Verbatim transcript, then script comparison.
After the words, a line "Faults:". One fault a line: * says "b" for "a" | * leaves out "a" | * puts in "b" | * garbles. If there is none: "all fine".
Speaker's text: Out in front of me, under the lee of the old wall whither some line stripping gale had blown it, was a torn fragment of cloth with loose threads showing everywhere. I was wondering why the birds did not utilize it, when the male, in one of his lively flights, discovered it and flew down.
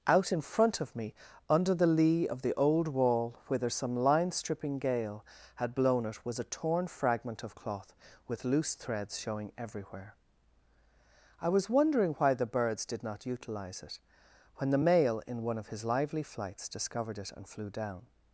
Out in front of me, under the lee of the old wall whither some line stripping gale had blown it, was a torn fragment of cloth with loose threads showing everywhere. I was wondering why the birds did not utilize it, when the male, in one of his lively flights, discovered it and flew down.
Faults:
all fine